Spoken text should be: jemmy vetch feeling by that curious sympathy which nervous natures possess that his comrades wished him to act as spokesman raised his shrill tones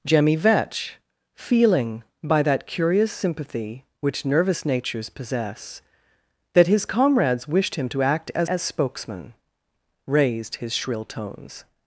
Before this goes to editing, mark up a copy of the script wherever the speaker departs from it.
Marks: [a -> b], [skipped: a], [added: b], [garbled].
jemmy vetch feeling by that curious sympathy which nervous natures possess that his comrades wished him to act as [added: as] spokesman raised his shrill tones